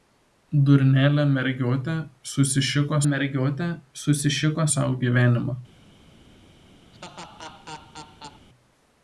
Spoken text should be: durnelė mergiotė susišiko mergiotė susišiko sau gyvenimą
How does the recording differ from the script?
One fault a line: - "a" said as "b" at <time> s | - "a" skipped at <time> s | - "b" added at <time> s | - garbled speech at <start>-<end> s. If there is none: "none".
none